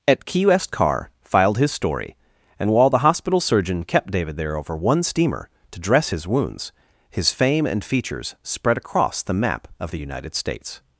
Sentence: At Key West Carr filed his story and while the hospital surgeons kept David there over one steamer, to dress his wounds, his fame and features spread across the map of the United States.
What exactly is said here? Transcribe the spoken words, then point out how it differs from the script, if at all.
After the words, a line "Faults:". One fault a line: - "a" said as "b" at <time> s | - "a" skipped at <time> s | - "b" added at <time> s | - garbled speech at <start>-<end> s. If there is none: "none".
At Key West Carr filed his story and while the hospital surgeon kept David there over one steamer, to dress his wounds, his fame and features spread across the map of the United States.
Faults:
- "surgeons" said as "surgeon" at 3.4 s